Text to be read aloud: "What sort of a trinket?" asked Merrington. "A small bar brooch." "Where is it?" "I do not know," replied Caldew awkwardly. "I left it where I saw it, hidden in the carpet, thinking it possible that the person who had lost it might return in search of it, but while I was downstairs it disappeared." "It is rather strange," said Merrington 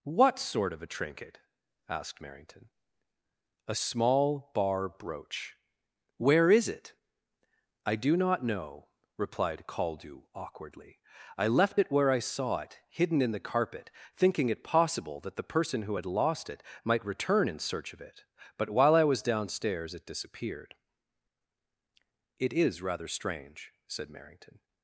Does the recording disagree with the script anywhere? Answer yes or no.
no